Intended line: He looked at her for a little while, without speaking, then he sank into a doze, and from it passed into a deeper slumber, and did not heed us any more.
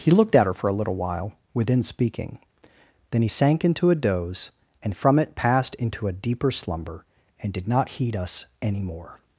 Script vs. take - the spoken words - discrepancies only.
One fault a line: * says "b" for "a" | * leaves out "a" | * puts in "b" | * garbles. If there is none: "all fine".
* says "within" for "without"